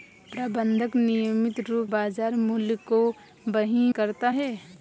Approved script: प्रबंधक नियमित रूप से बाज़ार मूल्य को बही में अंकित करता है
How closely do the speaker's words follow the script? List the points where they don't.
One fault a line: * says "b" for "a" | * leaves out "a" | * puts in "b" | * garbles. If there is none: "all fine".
* leaves out "से"
* leaves out "में अंकित"